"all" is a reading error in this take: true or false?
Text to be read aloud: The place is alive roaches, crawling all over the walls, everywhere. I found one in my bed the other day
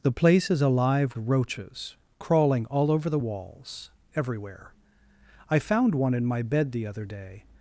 false